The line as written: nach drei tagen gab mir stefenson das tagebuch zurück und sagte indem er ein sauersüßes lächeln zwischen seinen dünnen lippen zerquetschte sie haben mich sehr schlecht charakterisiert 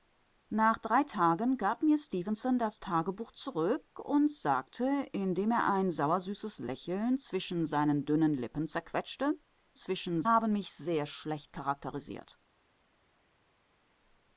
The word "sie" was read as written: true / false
false